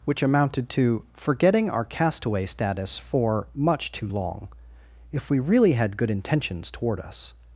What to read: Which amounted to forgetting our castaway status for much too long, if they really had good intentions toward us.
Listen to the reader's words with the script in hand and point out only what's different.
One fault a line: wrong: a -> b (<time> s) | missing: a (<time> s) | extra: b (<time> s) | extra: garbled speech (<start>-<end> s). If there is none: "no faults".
wrong: they -> we (5.3 s)